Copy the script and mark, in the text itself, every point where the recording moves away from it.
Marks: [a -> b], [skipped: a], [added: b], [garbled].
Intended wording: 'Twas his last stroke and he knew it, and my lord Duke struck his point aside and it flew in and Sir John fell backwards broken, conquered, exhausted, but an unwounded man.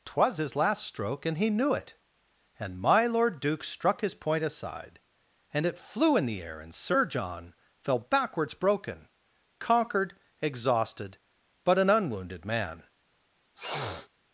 'Twas his last stroke and he knew it, and my lord Duke struck his point aside and it flew in [added: the air] and Sir John fell backwards broken, conquered, exhausted, but an unwounded man.